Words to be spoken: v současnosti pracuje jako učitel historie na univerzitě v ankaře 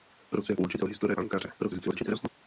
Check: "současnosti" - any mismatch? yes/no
yes